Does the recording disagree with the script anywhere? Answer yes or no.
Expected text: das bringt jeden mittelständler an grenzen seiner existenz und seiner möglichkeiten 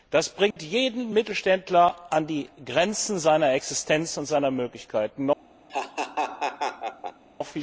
yes